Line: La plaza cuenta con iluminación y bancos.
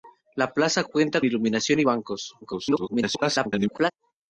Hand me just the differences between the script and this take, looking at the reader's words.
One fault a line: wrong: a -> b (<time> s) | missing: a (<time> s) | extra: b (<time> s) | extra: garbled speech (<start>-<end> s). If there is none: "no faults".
missing: con (1.2 s)
extra: garbled speech (2.4-3.9 s)